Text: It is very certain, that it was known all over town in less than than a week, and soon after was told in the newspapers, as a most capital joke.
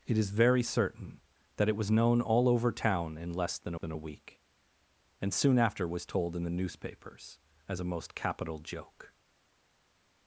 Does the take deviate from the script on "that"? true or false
false